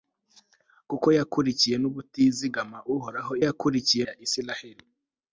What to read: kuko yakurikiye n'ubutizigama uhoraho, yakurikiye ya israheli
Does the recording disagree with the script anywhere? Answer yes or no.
no